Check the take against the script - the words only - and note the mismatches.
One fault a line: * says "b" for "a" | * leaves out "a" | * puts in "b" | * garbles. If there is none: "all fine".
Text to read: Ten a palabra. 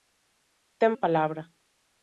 all fine